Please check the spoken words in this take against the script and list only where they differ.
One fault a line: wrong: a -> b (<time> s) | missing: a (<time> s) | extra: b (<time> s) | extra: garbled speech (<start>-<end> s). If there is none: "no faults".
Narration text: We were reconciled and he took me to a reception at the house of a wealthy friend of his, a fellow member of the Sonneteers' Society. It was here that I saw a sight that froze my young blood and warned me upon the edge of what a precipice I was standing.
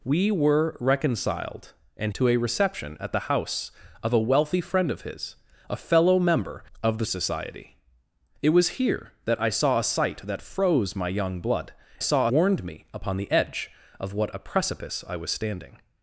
missing: he took me (2.1 s)
missing: Sonneteers (7.0 s)
wrong: and -> saw (12.0 s)